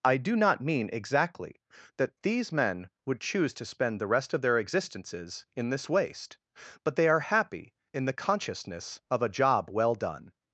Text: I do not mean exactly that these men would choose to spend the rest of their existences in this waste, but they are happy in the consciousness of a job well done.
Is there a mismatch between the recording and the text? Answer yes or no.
no